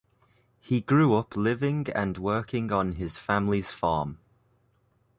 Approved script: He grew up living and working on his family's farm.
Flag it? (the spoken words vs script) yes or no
no